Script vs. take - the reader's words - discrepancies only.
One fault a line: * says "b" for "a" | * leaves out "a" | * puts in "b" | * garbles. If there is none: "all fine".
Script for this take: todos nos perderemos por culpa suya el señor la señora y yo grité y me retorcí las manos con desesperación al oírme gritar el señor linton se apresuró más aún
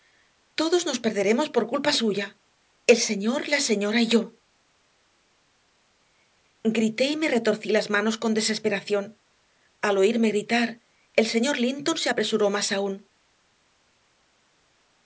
all fine